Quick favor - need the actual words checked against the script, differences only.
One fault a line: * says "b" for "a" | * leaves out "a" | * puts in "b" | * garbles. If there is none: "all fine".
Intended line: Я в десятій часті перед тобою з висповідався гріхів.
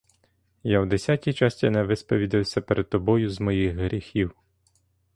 * puts in "не висповідався"
* says "моїх" for "висповідався"